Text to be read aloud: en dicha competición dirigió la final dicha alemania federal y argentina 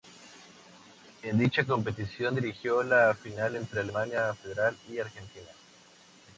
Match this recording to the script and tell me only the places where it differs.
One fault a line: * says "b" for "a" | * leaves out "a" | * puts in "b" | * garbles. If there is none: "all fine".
* says "entre" for "dicha"